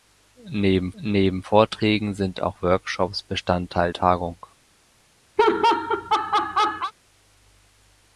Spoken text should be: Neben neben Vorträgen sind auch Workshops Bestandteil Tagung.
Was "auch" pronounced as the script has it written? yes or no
yes